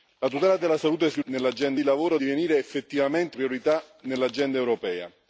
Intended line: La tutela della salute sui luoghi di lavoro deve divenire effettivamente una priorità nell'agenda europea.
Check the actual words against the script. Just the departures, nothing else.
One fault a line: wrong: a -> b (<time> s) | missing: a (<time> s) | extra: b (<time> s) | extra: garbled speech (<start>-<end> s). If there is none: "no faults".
wrong: luoghi -> nell'agenda (1.2 s)
missing: deve (2.2 s)
missing: una (3.4 s)